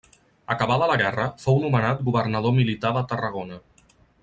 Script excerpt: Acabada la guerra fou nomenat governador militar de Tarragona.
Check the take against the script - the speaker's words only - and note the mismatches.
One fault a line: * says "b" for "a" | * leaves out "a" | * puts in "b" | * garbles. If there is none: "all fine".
all fine